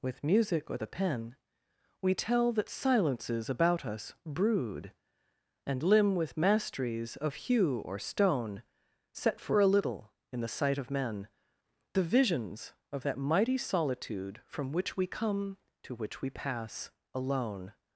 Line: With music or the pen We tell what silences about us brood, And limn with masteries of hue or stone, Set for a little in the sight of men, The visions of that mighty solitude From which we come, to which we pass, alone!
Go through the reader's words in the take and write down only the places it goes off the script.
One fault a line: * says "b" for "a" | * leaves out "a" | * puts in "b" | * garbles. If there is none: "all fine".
* says "that" for "what"